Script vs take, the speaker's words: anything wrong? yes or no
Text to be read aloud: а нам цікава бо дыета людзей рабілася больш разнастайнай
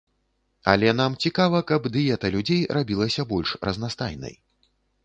yes